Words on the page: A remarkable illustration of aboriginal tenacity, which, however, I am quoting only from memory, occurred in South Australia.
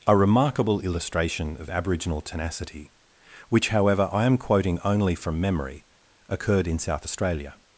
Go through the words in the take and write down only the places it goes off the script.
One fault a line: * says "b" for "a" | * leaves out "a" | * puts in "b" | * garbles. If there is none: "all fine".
all fine